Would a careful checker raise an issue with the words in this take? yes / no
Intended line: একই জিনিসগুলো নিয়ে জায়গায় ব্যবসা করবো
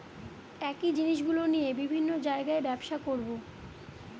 yes